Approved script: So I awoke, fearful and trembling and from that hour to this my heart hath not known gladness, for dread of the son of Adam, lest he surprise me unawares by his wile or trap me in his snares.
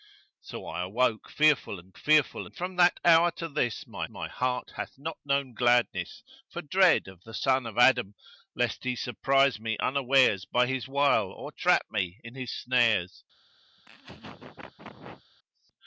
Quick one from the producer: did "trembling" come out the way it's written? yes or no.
no